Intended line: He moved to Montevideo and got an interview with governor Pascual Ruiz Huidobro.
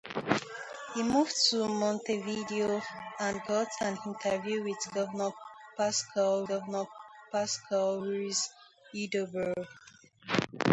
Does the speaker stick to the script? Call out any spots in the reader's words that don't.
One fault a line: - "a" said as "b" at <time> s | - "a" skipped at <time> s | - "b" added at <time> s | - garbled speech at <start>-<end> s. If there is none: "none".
- "governor Pascual" added at 6.5 s